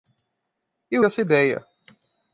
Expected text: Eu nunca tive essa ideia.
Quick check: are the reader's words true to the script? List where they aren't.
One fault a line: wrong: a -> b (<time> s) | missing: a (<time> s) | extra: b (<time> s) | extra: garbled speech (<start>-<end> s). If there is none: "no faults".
missing: nunca tive (1.0 s)